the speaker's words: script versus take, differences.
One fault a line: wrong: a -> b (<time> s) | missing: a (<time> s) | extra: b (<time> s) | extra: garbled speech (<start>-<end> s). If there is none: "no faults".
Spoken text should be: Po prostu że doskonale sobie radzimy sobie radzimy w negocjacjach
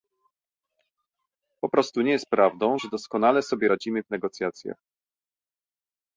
extra: nie jest prawdą (2.0 s)
missing: sobie radzimy (4.0 s)